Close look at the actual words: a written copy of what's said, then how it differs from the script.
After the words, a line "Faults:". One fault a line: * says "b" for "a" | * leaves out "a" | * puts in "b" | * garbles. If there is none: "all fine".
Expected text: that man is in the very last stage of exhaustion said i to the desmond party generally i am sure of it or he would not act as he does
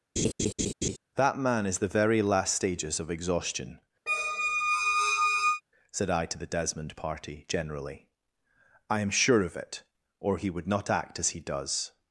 that man is the very last stages of exhaustion said i to the desmond party generally i am sure of it or he would not act as he does
Faults:
* leaves out "in"
* says "stages" for "stage"